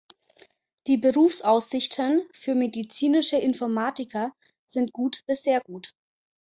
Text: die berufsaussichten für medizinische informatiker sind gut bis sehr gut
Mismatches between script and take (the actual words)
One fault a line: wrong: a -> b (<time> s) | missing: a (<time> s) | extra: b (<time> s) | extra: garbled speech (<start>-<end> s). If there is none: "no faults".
no faults